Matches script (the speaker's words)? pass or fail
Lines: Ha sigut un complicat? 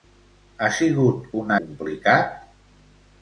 pass